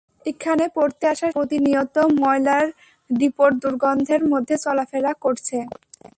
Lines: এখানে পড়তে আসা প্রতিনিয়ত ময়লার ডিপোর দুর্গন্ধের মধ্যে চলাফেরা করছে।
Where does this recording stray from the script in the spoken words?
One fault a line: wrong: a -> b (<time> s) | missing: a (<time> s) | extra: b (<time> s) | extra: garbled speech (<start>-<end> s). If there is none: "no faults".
no faults